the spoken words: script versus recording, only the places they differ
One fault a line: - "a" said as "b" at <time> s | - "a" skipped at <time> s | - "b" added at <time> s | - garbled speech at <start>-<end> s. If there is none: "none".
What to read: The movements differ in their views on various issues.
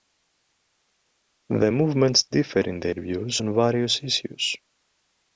none